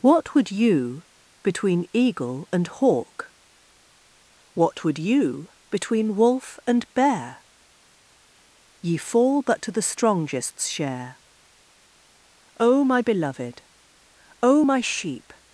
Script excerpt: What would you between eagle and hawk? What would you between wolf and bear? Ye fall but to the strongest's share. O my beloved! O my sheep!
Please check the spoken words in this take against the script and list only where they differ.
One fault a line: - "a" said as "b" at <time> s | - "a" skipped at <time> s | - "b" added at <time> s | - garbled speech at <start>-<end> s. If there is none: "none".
none